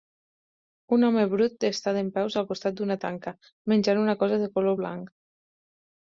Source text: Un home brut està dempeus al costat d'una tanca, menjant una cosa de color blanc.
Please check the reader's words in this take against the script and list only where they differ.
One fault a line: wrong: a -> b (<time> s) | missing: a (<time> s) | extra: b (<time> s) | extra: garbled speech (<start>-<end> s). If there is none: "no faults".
no faults